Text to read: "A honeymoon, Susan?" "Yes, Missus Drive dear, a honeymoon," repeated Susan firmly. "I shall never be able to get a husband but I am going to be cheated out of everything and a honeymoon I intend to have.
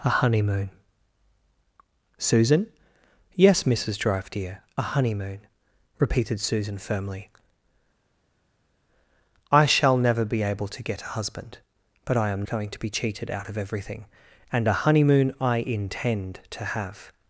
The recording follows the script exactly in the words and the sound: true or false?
true